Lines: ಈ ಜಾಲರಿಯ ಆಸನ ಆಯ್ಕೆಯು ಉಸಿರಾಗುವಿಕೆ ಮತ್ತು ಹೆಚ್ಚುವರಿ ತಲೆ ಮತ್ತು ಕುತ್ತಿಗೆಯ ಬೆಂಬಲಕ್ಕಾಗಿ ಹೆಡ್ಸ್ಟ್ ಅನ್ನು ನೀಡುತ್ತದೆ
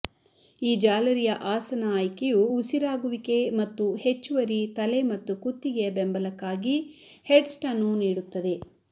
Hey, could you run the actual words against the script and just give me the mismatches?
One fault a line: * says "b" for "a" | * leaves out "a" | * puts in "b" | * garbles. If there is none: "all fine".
all fine